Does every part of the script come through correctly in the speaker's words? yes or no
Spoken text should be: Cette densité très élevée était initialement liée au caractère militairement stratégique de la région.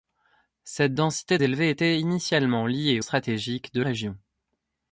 no